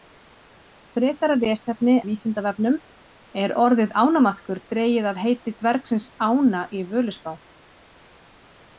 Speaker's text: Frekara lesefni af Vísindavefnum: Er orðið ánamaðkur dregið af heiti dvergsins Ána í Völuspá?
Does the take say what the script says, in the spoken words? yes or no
no